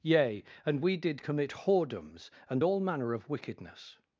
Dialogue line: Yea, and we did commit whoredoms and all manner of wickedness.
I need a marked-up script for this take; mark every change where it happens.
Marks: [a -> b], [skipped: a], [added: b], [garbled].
Yea, and we did commit whoredoms and all manner of wickedness.